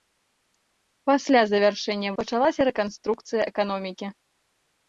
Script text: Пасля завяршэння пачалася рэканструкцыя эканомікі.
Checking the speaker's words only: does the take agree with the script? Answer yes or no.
yes